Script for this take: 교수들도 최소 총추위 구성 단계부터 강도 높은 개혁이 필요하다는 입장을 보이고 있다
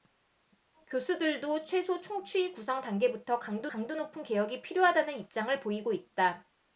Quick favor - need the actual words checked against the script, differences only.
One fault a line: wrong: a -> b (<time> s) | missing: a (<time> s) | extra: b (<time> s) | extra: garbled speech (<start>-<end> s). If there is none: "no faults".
extra: 강도 (3.7 s)